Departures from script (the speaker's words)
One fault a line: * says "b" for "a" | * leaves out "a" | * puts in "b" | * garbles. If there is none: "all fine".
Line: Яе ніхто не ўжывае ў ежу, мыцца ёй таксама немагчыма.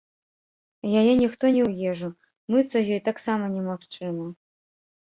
* leaves out "ўжывае"